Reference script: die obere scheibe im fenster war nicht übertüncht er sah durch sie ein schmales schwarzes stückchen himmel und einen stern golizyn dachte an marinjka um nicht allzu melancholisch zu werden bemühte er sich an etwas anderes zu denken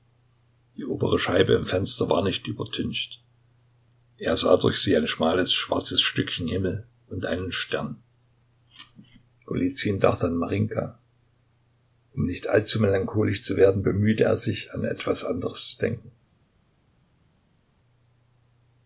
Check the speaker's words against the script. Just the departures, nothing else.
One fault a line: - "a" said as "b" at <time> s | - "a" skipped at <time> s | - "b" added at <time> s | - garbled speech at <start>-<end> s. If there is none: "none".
none